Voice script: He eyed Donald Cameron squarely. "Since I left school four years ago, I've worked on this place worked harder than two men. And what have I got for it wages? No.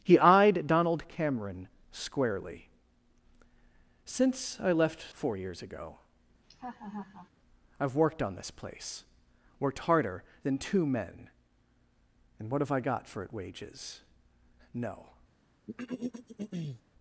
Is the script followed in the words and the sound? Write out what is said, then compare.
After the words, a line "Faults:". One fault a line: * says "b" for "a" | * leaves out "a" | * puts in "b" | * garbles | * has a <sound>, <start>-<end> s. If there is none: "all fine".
He eyed Donald Cameron squarely. "Since I left four years ago, I've worked on this place worked harder than two men. And what have I got for it wages? No.
Faults:
* leaves out "school"
* has a laugh, 6.4-7.3 s
* has a throat clearing, 15.7-16.8 s